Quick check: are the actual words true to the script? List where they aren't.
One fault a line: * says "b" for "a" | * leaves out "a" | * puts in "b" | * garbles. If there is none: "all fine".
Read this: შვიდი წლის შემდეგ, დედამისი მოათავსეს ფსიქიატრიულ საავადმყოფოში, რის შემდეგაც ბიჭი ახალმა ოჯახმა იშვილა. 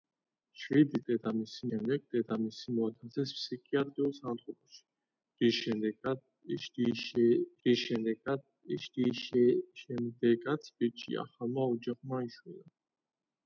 * says "დედამისი" for "წლის"
* puts in "რის"